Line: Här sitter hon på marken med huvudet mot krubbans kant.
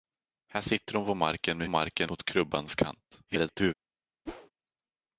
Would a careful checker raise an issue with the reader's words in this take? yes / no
yes